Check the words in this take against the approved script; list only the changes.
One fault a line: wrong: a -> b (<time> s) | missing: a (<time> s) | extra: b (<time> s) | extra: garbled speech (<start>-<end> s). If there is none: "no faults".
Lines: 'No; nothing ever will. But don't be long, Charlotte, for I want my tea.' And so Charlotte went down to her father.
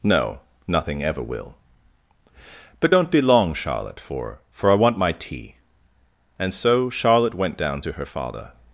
extra: for (4.5 s)